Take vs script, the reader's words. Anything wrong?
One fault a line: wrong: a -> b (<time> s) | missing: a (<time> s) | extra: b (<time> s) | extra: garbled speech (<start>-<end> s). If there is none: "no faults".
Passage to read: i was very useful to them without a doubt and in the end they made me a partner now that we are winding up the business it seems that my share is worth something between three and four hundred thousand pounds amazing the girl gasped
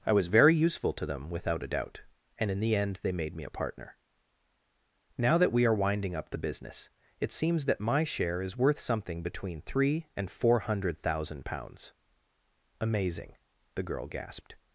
no faults